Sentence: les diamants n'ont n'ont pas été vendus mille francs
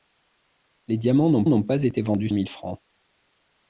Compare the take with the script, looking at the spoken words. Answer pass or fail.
pass